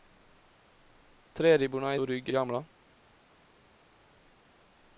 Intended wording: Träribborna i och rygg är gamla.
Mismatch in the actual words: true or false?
false